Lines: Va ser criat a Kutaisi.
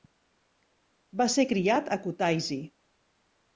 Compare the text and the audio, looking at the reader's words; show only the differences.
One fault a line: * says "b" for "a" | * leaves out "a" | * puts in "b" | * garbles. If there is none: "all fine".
all fine